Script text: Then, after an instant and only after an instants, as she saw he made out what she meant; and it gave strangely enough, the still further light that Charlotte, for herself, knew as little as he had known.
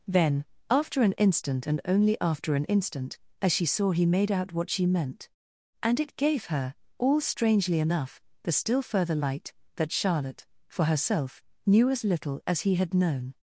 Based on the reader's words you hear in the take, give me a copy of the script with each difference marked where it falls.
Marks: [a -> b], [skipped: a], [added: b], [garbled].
Then, after an instant and only after an [instants, -> instant] as she saw he made out what she meant; and it gave [added: her all] strangely enough, the still further light that Charlotte, for herself, knew as little as he had known.